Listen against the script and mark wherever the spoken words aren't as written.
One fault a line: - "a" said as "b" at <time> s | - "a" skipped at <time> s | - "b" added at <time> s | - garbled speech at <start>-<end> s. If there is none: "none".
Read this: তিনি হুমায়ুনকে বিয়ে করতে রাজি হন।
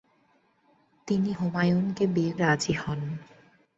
- "করতে" skipped at 2.3 s